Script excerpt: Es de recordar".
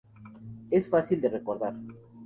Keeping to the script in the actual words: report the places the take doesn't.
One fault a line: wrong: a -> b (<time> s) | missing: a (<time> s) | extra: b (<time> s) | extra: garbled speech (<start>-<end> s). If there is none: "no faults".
extra: fácil (0.9 s)